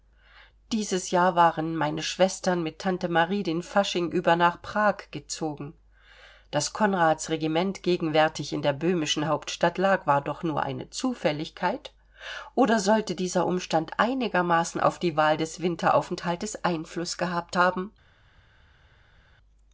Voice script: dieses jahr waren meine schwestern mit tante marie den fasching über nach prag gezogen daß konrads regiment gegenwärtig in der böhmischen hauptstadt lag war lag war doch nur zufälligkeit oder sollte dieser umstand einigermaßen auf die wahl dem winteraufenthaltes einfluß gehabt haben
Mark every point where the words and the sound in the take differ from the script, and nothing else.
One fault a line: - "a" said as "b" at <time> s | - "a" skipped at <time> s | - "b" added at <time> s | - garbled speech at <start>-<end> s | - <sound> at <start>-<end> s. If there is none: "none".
- "lag war" skipped at 10.2 s
- "eine" added at 10.6 s
- "dem" said as "des" at 15.4 s